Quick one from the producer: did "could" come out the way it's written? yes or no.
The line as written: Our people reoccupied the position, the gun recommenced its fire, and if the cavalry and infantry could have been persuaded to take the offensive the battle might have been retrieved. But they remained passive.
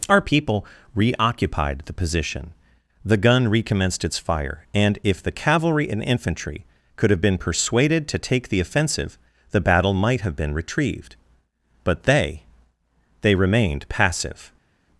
yes